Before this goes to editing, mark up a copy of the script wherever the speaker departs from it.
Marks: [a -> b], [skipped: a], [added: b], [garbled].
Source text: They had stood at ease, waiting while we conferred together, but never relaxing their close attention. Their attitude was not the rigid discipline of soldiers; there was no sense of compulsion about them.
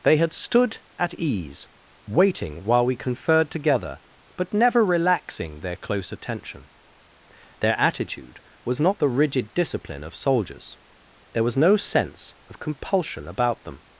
They had stood at ease, waiting while we conferred together, but never relaxing their close attention. Their attitude was not the rigid discipline of soldiers; there was no sense of compulsion about them.